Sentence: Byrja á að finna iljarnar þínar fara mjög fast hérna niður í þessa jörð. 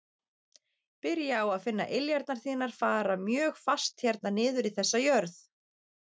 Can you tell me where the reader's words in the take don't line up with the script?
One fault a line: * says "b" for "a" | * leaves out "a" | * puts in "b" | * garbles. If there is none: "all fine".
all fine